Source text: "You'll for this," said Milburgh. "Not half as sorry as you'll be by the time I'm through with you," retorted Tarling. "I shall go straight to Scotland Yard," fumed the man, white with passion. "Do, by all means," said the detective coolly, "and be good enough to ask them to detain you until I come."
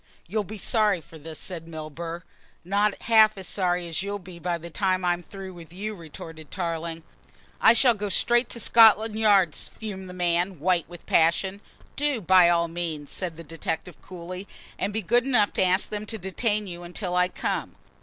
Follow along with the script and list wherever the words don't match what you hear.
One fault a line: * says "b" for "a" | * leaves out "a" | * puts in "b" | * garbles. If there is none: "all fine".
* puts in "be sorry"